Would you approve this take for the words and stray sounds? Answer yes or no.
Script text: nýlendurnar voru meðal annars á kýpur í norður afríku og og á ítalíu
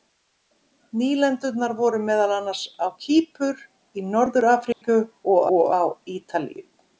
no